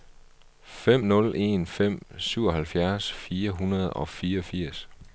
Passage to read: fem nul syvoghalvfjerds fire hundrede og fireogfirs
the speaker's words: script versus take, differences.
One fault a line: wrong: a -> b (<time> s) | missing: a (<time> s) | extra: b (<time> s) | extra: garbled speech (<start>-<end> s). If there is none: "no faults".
extra: en fem (1.4 s)